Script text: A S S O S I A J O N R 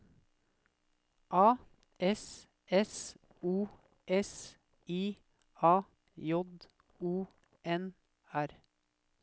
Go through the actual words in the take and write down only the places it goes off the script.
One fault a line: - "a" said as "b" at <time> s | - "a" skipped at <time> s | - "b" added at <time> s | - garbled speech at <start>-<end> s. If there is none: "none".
none